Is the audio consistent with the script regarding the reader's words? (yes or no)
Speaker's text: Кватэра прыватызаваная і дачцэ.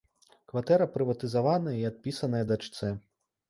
no